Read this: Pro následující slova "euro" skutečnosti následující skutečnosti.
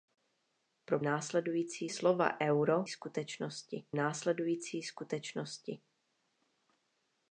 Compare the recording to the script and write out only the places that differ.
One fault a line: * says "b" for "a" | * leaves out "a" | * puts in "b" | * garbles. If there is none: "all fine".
all fine